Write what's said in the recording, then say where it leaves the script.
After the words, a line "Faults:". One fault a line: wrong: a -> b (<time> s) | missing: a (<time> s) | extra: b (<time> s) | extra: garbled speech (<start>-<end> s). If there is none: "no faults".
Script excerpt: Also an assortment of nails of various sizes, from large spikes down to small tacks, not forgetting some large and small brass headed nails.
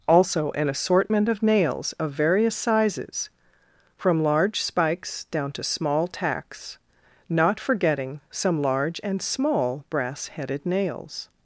Also an assortment of nails of various sizes, from large spikes down to small tacks, not forgetting some large and small brass headed nails.
Faults:
no faults